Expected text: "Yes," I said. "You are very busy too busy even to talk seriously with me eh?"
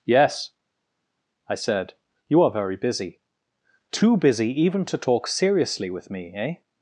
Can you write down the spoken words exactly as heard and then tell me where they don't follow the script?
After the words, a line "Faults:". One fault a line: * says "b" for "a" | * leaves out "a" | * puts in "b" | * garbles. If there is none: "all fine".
"Yes," I said. "You are very busy too busy even to talk seriously with me eh?"
Faults:
all fine